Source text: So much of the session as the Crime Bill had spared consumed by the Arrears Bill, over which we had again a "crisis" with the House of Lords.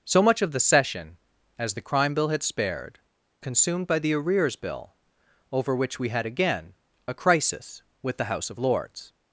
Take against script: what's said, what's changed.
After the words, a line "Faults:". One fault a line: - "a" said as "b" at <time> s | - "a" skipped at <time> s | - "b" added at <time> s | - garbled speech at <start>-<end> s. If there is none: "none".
So much of the session as the Crime Bill had spared consumed by the Arrears Bill, over which we had again a "crisis" with the House of Lords.
Faults:
none